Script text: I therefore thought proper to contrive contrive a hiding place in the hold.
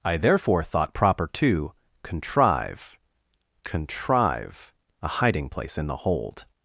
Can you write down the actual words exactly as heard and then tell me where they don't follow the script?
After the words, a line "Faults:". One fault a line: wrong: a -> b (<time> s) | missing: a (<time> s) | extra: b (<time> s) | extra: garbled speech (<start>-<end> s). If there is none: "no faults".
I therefore thought proper to contrive contrive a hiding place in the hold.
Faults:
no faults